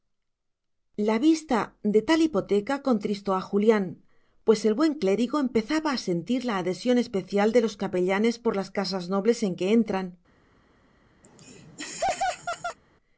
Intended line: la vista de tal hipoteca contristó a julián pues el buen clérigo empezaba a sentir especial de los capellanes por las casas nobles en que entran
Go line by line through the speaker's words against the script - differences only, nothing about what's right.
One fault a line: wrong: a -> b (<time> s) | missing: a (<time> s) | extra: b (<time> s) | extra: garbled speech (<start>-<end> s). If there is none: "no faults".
extra: la adhesión (6.4 s)